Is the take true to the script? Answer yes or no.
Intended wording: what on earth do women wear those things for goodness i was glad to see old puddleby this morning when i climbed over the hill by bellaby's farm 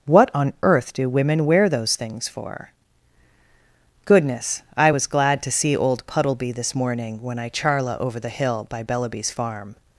no